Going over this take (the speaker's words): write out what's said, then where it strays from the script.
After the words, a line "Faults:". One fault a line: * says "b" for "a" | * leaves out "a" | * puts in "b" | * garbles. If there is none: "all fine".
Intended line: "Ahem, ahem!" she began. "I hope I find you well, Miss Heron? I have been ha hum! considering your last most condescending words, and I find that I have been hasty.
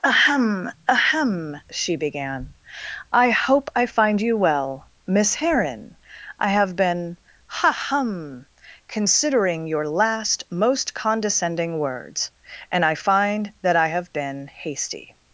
"Ahem, ahem!" she began. "I hope I find you well, Miss Heron? I have been ha hum! considering your last most condescending words, and I find that I have been hasty.
Faults:
all fine